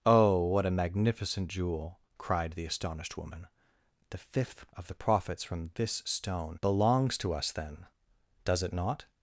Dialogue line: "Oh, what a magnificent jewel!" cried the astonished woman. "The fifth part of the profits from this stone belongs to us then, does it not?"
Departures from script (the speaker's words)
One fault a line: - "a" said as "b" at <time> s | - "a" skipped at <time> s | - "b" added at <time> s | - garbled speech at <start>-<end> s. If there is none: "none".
- "part" skipped at 4.7 s